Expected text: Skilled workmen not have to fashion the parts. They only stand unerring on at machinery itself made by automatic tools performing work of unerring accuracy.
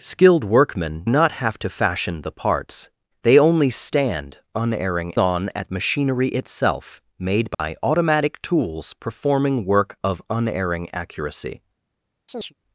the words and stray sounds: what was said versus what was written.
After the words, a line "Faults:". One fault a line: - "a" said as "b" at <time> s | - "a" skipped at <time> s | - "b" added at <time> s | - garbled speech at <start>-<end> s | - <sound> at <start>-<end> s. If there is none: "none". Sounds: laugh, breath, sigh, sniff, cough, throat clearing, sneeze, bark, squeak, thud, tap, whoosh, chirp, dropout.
Skilled workmen not have to fashion the parts. They only stand unerring on at machinery itself made by automatic tools performing work of unerring accuracy.
Faults:
- dropout at 7.5-7.6 s
- chirp at 12.3-12.5 s